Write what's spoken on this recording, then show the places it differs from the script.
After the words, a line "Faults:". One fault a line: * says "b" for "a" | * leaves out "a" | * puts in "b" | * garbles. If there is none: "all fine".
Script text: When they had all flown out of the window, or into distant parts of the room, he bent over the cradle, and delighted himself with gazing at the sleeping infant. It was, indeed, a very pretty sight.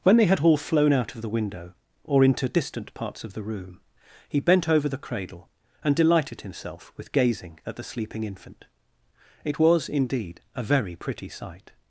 When they had all flown out of the window, or into distant parts of the room, he bent over the cradle, and delighted himself with gazing at the sleeping infant. It was, indeed, a very pretty sight.
Faults:
all fine